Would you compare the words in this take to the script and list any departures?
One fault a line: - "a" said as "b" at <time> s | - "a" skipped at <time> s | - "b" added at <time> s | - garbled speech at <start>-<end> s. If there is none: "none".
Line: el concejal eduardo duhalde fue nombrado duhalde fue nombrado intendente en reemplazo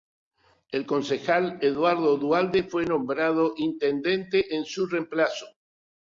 - "duhalde fue nombrado" skipped at 3.5 s
- "su" added at 4.6 s